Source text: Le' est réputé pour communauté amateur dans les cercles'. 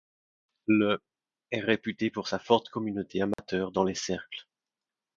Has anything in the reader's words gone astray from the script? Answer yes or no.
yes